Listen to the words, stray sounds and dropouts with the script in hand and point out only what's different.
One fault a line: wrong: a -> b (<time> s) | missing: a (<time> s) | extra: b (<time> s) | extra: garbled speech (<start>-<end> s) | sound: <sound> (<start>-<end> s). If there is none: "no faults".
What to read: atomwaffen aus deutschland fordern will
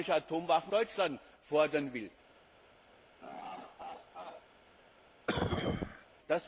missing: aus (0.7 s)
sound: laugh (3.2-4.5 s)
sound: cough (5.3-6.1 s)